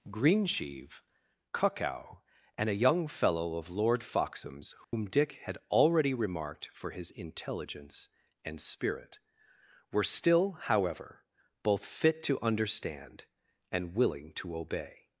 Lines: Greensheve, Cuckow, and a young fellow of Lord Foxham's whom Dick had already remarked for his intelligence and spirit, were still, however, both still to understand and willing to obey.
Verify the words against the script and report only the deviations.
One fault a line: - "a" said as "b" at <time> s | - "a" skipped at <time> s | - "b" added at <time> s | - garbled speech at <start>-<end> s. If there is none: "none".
- "still" said as "fit" at 11.8 s